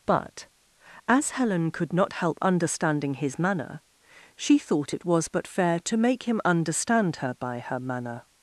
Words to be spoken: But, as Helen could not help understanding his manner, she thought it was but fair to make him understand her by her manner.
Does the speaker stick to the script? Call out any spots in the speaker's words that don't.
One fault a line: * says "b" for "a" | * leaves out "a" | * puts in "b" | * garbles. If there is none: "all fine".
all fine